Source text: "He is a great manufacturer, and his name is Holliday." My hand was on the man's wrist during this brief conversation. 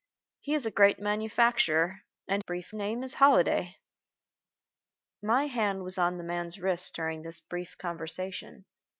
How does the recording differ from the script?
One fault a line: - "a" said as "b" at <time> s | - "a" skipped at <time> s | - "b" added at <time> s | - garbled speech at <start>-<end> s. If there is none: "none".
- "his" said as "brief" at 2.4 s